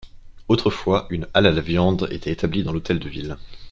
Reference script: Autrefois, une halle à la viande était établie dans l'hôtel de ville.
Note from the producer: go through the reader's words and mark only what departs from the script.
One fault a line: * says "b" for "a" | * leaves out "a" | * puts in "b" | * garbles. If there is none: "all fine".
all fine